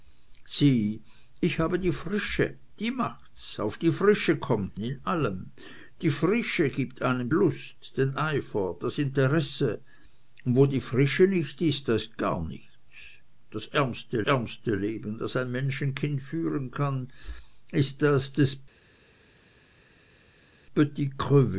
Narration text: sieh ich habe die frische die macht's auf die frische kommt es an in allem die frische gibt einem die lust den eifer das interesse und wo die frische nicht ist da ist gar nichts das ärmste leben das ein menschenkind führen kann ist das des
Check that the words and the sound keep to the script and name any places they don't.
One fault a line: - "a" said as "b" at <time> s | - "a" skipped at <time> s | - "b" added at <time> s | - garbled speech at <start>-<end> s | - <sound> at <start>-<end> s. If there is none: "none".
- "es an" skipped at 4.8 s
- "die" skipped at 7.3 s
- "ärmste" added at 14.2 s